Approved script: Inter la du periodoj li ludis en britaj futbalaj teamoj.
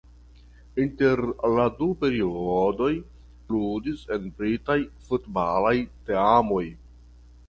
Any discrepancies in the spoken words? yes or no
yes